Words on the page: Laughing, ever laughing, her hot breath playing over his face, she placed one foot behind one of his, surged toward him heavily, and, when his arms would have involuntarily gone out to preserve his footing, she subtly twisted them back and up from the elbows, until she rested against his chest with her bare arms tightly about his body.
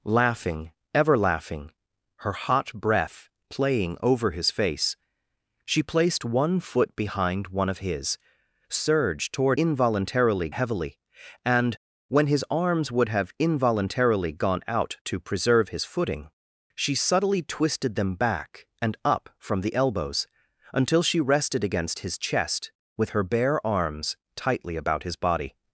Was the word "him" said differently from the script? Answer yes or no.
yes